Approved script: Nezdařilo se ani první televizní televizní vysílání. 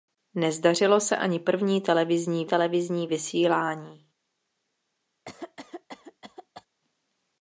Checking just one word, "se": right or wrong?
right